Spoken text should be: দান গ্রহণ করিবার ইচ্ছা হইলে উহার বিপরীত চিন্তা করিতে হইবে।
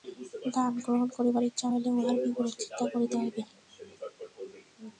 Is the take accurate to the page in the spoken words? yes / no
yes